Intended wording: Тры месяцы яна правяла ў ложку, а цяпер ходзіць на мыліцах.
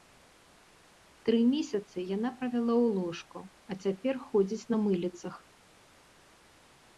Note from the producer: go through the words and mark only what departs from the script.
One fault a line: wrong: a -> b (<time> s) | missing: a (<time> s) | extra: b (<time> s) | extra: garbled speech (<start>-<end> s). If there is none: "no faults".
no faults